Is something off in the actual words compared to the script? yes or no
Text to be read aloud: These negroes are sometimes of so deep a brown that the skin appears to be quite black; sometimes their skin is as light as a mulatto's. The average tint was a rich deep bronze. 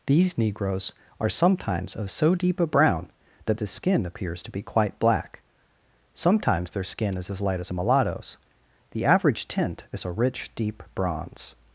yes